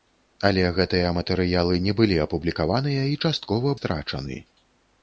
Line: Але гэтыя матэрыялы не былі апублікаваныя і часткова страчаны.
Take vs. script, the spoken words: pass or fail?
pass